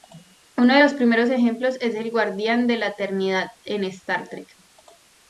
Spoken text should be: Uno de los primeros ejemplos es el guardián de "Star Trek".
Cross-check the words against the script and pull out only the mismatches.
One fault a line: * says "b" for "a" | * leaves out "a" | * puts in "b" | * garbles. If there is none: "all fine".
* puts in "la eternidad en"